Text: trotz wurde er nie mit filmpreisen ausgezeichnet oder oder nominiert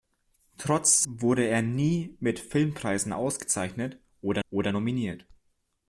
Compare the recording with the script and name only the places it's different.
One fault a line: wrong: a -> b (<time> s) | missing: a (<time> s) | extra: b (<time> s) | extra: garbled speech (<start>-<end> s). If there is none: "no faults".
no faults